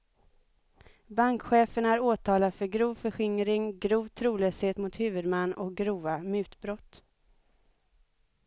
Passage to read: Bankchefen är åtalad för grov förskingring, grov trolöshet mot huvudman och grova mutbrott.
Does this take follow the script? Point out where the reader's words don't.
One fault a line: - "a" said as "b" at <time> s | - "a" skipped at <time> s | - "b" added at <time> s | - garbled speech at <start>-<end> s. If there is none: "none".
none